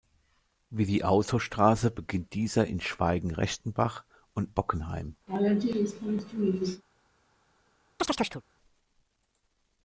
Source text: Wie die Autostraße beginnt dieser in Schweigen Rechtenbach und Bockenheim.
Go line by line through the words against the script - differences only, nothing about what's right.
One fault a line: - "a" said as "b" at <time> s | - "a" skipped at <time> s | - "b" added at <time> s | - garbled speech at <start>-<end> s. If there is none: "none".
none